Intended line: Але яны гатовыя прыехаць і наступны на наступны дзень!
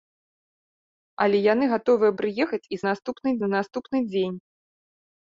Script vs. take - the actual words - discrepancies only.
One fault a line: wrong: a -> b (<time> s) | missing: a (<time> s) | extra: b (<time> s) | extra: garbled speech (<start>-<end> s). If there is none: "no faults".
no faults